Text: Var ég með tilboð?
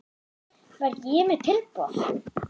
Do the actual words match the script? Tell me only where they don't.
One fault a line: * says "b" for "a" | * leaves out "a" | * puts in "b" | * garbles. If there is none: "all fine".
all fine